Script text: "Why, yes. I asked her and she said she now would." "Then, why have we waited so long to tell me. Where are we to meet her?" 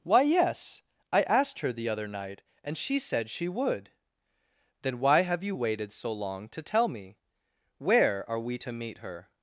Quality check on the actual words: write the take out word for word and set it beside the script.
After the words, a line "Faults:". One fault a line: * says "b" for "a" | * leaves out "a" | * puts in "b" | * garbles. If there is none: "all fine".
"Why, yes. I asked her the other night and she said she would." "Then, why have you waited so long to tell me. Where are we to meet her?"
Faults:
* puts in "the other night"
* leaves out "now"
* says "you" for "we"